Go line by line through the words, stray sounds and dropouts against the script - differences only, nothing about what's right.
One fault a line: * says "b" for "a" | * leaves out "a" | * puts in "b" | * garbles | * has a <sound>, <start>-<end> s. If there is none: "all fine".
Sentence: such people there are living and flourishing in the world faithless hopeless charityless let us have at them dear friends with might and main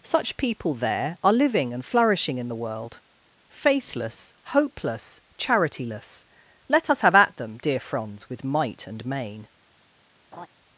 * says "franz" for "friends"
* has a laugh, 10.3-10.5 s